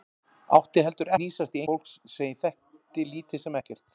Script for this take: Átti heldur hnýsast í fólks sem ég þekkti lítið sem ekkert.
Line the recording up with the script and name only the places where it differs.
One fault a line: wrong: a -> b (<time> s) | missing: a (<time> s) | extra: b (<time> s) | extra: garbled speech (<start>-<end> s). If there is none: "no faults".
no faults